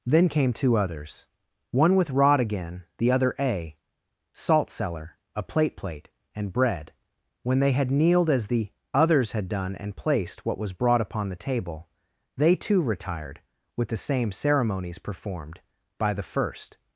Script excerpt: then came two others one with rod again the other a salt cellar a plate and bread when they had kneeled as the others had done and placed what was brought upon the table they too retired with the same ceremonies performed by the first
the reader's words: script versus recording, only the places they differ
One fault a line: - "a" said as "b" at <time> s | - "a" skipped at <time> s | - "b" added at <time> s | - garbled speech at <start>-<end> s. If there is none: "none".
- "plate" added at 5.8 s